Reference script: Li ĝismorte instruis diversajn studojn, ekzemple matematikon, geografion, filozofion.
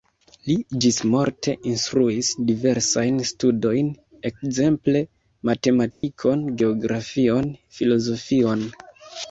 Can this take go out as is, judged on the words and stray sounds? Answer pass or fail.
fail